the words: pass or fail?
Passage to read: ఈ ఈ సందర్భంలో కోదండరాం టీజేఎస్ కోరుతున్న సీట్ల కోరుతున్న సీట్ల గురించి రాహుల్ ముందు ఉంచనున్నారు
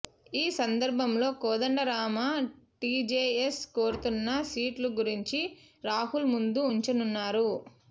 fail